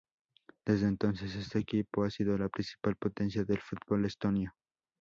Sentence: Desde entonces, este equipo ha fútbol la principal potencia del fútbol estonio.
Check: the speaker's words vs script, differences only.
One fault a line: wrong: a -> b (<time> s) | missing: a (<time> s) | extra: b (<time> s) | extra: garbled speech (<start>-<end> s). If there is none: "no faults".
wrong: fútbol -> sido (2.1 s)